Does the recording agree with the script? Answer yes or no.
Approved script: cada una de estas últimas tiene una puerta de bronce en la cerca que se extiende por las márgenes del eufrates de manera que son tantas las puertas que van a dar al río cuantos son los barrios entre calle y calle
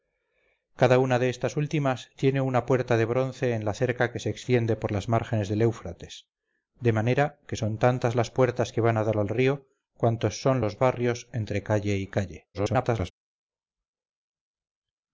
no